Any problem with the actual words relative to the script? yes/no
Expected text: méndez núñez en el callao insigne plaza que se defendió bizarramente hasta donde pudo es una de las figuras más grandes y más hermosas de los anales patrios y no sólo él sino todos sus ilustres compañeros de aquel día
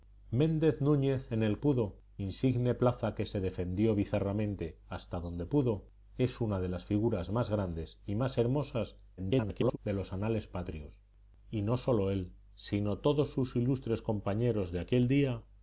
yes